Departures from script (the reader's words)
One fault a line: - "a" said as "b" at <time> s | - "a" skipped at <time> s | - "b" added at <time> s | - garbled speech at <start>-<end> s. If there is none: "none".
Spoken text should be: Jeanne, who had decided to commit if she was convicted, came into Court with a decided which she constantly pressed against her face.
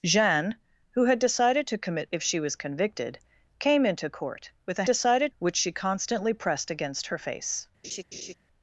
none